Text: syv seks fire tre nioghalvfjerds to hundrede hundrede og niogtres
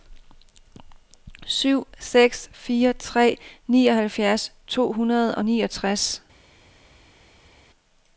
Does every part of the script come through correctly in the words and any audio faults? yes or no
no